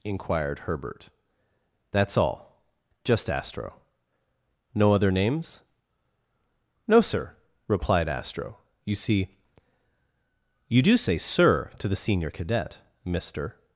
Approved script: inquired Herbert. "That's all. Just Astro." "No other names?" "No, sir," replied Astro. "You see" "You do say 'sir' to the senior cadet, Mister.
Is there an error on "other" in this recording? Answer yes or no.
no